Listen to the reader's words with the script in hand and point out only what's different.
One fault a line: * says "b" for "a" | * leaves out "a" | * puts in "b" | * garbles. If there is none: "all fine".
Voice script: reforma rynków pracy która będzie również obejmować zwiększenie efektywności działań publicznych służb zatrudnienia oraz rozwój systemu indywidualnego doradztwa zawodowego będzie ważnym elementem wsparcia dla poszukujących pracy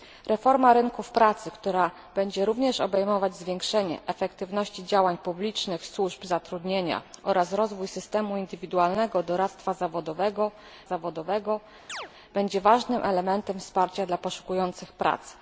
* puts in "zawodowego"